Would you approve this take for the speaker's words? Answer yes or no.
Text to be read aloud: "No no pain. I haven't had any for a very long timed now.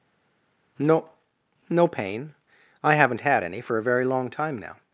no